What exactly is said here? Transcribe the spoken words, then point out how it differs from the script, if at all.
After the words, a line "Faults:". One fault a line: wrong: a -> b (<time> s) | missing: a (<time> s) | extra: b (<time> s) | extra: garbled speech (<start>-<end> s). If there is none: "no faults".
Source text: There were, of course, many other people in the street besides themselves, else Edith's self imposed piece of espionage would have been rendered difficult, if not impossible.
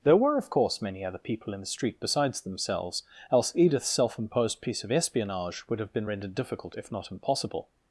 There were, of course, many other people in the street besides themselves, else Edith's self imposed piece of espionage would have been rendered difficult, if not impossible.
Faults:
no faults